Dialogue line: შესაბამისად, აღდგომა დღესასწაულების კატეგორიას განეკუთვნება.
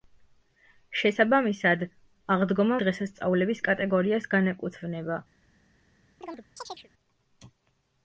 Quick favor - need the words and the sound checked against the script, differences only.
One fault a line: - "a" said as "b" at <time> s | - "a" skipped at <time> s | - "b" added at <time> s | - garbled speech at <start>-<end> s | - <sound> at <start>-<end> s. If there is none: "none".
- chirp at 6.2-6.9 s